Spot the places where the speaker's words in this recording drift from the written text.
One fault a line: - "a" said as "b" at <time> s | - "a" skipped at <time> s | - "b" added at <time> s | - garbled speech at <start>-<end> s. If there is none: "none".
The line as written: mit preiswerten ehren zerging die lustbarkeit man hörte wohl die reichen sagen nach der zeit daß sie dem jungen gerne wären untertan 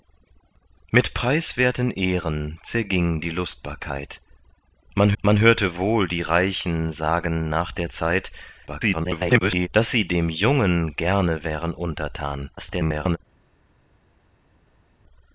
- "man" added at 5.2 s
- garbled speech at 8.7-9.7 s
- garbled speech at 12.6-13.2 s